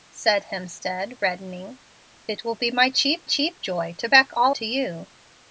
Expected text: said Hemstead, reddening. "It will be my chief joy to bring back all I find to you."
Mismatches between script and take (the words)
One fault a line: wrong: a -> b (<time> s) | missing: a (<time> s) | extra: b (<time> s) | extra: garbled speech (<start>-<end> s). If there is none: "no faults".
extra: chief (3.2 s)
missing: bring (4.1 s)
missing: I find (4.5 s)